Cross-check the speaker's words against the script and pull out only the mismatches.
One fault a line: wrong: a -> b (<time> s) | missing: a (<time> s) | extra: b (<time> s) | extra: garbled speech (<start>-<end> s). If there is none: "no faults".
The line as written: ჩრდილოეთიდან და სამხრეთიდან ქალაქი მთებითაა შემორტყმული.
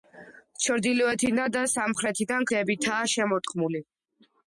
missing: ქალაქი (2.5 s)